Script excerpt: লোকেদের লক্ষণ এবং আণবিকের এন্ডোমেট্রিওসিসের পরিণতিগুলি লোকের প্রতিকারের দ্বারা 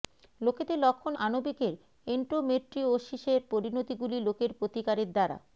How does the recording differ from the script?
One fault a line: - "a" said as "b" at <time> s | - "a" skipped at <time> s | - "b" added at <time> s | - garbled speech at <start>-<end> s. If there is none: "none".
- "এবং" skipped at 1.1 s